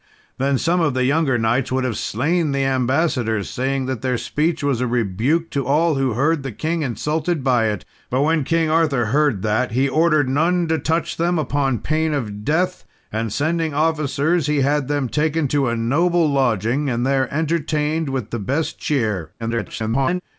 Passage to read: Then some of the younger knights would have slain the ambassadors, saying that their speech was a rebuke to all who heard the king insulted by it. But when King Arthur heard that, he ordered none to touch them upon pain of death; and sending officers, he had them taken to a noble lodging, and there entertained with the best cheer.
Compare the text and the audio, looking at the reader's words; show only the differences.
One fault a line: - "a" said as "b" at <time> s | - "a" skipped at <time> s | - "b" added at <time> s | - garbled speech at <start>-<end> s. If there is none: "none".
- garbled speech at 19.4-20.2 s